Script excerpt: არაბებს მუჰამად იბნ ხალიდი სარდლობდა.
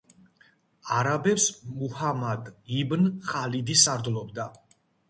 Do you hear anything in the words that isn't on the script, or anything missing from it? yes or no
no